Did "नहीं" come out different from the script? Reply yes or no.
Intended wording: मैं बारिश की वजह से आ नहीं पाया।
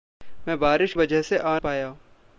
yes